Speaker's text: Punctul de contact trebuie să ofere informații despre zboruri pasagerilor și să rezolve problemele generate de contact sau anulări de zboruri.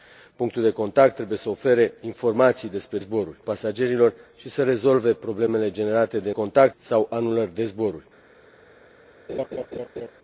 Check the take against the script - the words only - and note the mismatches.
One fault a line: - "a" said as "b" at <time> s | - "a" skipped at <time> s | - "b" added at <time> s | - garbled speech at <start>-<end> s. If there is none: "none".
none